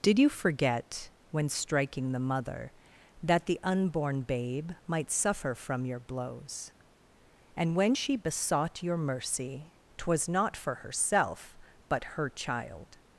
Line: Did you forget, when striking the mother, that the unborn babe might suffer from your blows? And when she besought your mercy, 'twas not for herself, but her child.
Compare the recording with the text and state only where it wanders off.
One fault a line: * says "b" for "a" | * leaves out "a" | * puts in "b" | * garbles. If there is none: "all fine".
all fine